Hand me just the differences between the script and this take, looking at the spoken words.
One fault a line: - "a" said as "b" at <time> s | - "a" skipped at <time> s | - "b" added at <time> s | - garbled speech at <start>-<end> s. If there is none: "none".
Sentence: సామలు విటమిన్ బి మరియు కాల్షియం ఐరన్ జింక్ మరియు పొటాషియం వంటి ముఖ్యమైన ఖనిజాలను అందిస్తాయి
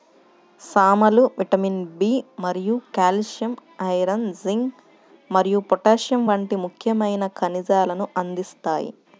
none